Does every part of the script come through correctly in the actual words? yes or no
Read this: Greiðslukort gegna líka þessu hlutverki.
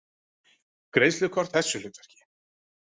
no